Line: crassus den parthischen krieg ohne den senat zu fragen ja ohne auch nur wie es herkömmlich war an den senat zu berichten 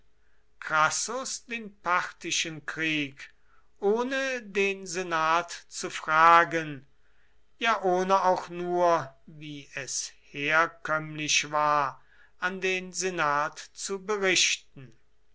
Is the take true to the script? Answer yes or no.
yes